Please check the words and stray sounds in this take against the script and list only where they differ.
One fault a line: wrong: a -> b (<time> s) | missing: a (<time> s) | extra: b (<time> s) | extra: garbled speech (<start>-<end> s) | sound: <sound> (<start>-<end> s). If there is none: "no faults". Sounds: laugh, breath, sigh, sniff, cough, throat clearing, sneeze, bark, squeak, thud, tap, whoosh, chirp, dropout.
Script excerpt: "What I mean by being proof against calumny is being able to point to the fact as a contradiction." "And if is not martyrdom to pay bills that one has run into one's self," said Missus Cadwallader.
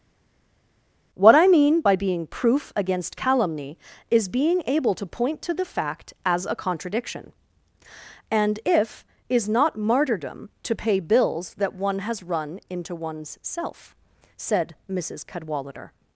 no faults